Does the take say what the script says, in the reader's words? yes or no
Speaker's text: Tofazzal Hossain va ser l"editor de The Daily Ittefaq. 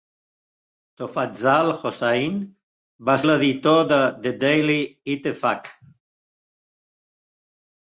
no